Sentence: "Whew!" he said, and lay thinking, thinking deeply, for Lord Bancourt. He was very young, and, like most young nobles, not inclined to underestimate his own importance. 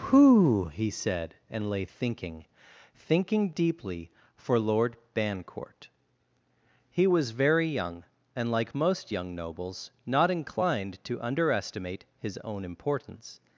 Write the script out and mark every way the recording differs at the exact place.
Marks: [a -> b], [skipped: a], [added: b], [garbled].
"Whew!" he said, and lay thinking, thinking deeply, for Lord Bancourt. He was very young, and, like most young nobles, not inclined to underestimate his own importance.